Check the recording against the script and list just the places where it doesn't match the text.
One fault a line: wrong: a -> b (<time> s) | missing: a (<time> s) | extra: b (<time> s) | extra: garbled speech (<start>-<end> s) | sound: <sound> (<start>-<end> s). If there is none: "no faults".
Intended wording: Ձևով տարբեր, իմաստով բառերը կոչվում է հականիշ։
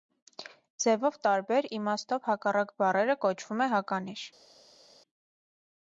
extra: հակառակ (2.3 s)